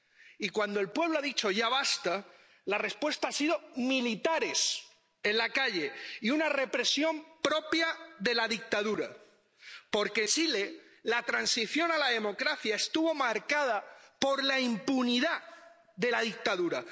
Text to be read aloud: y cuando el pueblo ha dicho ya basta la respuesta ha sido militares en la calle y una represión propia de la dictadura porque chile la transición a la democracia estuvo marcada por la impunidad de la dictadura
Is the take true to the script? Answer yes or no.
yes